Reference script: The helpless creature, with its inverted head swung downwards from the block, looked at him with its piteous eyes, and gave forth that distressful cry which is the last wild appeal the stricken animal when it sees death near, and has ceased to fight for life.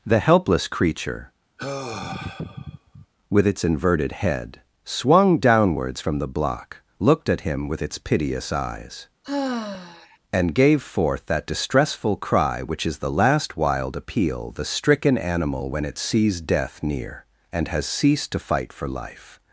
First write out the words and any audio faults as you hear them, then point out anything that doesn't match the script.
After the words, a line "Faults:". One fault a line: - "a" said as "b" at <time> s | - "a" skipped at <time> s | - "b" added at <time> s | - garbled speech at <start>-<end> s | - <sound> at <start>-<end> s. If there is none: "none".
The helpless creature, with its inverted head swung downwards from the block, looked at him with its piteous eyes, and gave forth that distressful cry which is the last wild appeal the stricken animal when it sees death near, and has ceased to fight for life.
Faults:
- sigh at 1.6-3.1 s
- sigh at 9.2-10.2 s